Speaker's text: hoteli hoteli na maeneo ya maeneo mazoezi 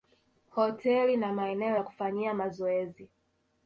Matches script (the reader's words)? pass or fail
fail